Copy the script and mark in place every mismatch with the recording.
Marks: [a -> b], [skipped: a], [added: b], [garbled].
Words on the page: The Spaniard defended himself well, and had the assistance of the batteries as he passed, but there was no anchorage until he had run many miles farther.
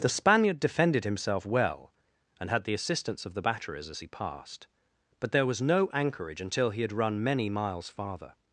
The Spaniard defended himself well, and had the assistance of the batteries as he passed, but there was no anchorage until he had run many miles farther.